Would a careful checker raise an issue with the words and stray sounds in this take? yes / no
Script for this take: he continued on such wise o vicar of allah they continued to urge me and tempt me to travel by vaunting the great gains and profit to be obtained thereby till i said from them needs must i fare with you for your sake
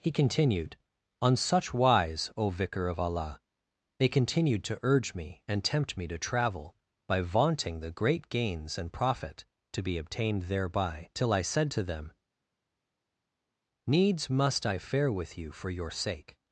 yes